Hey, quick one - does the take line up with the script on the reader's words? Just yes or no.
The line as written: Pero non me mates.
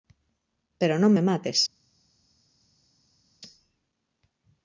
yes